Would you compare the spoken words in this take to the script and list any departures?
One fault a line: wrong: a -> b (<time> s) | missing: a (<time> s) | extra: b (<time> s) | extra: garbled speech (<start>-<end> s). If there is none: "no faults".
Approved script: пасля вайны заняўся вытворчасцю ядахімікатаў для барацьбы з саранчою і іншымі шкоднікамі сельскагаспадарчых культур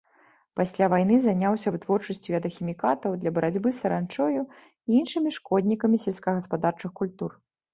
no faults